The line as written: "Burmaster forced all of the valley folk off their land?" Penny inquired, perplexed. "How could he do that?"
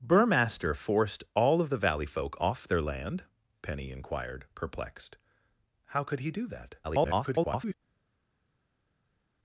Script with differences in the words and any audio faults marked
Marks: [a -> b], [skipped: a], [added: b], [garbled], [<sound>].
"Burmaster forced all of the valley folk off their land?" Penny inquired, perplexed. "How could he do that?" [garbled]